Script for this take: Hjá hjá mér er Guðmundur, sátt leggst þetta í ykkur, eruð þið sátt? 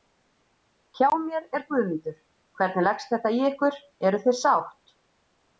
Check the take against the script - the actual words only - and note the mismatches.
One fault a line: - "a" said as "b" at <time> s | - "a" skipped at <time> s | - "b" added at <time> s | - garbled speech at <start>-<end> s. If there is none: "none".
- "hjá" skipped at 1.1 s
- "sátt" said as "hvernig" at 2.6 s